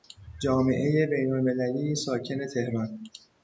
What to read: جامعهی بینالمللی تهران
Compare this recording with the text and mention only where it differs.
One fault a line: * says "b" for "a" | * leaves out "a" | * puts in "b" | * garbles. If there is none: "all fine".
* puts in "ساکن"